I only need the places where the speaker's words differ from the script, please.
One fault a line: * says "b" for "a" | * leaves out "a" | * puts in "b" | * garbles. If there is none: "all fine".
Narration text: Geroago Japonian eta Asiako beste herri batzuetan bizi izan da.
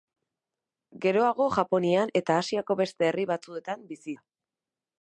* leaves out "izan"